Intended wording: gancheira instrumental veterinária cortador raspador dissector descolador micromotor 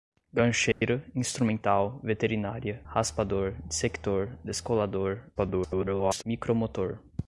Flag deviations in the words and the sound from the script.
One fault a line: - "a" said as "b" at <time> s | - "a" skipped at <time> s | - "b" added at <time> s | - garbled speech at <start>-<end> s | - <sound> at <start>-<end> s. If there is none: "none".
- dropout at 0.7-0.8 s
- "cortador" skipped at 2.8 s
- garbled speech at 5.4-6.2 s